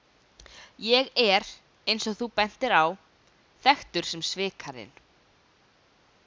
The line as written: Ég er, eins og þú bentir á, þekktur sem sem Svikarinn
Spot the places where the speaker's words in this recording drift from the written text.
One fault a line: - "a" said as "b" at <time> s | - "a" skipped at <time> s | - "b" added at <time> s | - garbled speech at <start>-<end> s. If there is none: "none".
- "sem" skipped at 4.2 s